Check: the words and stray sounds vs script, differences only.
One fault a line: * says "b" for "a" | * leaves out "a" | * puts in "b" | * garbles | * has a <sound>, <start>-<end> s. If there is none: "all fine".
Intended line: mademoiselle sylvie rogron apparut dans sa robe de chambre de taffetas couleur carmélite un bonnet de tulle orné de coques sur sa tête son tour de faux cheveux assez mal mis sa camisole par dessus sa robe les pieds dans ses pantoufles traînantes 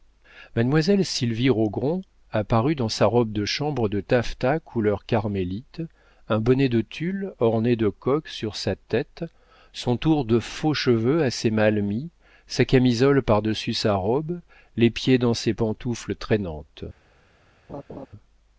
* has a laugh, 17.7-18.1 s